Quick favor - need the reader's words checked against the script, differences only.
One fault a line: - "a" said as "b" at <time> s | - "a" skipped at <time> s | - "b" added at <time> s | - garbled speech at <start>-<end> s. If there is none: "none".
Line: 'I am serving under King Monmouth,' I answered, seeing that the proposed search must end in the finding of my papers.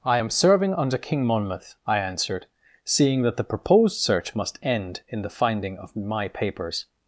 none